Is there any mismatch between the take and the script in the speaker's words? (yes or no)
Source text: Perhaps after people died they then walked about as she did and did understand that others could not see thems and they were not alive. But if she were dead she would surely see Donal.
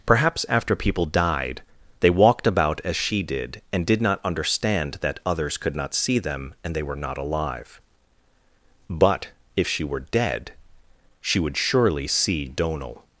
yes